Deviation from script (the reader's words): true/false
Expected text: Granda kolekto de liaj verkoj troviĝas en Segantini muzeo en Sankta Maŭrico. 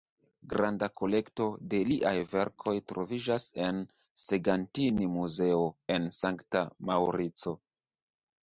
false